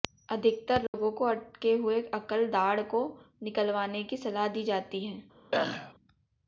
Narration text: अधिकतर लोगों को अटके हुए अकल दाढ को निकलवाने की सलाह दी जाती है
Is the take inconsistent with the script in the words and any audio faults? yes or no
yes